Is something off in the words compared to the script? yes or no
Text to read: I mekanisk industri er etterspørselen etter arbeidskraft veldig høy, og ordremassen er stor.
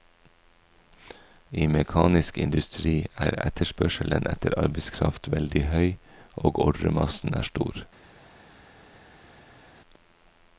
no